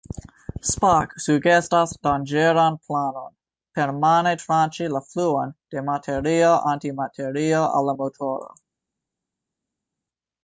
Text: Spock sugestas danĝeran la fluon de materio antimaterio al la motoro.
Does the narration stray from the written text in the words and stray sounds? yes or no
yes